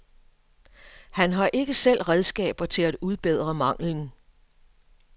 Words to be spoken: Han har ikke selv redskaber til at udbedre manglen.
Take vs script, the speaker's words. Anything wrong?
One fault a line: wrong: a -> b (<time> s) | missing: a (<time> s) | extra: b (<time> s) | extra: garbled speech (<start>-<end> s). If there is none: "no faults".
no faults